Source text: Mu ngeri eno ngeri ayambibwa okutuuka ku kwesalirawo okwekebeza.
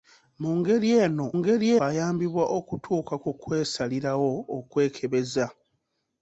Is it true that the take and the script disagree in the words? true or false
false